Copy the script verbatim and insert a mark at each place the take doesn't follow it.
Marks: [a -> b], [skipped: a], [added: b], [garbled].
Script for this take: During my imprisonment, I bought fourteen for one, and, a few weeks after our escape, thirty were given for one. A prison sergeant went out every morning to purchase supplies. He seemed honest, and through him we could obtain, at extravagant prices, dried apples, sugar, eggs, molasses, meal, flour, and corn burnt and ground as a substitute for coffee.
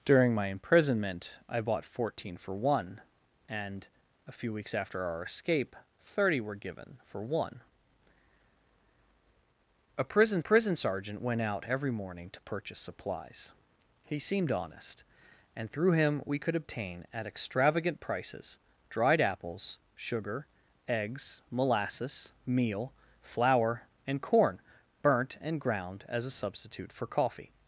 During my imprisonment, I bought fourteen for one, and, a few weeks after our escape, thirty were given for one. A prison [added: prison] sergeant went out every morning to purchase supplies. He seemed honest, and through him we could obtain, at extravagant prices, dried apples, sugar, eggs, molasses, meal, flour, and corn burnt and ground as a substitute for coffee.